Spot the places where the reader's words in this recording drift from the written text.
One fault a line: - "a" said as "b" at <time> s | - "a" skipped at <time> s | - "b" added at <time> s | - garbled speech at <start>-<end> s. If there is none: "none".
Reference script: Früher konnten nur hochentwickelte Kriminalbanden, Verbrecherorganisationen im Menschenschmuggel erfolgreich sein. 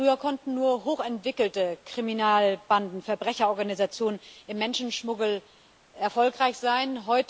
none